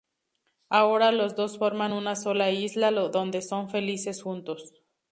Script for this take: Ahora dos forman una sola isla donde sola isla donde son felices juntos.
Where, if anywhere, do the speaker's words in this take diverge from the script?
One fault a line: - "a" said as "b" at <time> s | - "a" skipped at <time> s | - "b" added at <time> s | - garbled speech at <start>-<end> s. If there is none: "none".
- "los" added at 1.1 s
- "sola isla donde" skipped at 3.4 s